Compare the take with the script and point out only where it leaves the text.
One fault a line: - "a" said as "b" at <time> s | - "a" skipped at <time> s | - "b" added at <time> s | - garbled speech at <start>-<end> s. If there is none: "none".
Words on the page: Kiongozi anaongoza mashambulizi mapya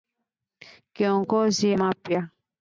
- "anaongoza mashambulizi" skipped at 1.8 s